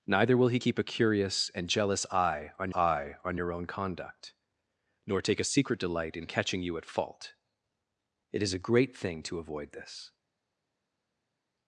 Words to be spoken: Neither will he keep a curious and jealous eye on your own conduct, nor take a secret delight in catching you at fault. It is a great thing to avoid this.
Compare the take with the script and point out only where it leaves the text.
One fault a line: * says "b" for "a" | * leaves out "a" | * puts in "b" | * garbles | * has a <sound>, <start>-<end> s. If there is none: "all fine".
* puts in "eye on"